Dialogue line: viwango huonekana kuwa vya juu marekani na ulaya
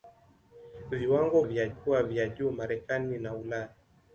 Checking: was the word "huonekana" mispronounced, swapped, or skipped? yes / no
yes